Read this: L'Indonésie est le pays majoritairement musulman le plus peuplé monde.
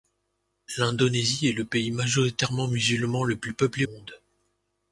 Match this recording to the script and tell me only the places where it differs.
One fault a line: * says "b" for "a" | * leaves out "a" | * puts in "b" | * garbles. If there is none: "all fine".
all fine